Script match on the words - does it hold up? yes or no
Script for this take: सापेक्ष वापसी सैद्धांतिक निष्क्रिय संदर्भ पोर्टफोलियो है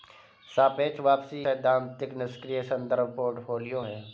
yes